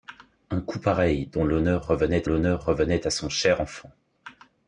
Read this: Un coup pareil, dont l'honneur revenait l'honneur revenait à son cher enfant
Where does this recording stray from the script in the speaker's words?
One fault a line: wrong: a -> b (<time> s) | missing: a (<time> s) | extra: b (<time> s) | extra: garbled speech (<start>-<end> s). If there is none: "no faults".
no faults